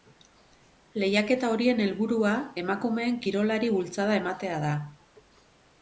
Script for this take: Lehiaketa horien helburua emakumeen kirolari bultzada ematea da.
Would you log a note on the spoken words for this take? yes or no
no